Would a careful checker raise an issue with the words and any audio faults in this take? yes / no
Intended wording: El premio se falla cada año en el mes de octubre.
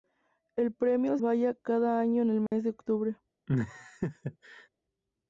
yes